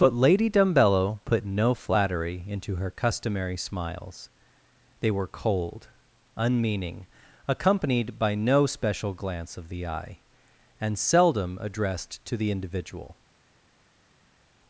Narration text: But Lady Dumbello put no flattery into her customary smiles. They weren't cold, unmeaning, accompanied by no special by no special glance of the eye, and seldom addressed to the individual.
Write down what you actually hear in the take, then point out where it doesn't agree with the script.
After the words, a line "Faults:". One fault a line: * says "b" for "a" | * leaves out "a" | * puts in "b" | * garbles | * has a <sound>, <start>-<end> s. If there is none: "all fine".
But Lady Dumbello put no flattery into her customary smiles. They were cold, unmeaning, accompanied by no special glance of the eye, and seldom addressed to the individual.
Faults:
* says "were" for "weren't"
* leaves out "by no special"